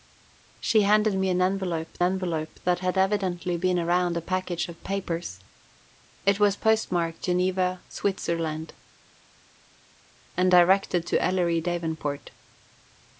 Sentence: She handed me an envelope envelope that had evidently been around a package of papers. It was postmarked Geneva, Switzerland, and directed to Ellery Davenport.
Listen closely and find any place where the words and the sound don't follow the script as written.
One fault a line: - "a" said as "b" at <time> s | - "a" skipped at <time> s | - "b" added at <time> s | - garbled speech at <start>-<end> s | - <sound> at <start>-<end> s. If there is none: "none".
none